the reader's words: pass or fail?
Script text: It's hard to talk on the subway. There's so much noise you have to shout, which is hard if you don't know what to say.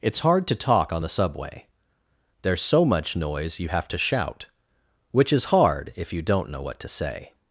pass